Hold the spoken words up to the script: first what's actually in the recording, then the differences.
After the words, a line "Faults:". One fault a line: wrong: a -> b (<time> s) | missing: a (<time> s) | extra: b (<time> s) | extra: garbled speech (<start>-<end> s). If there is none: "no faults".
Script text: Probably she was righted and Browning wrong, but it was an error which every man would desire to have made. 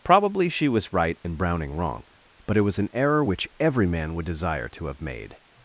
Probably she was right and Browning wrong, but it was an error which every man would desire to have made.
Faults:
wrong: righted -> right (0.9 s)